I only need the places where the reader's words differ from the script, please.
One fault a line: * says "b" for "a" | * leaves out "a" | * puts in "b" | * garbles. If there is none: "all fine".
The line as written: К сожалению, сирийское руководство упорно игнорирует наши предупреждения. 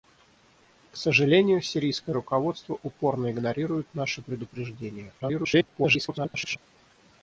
* garbles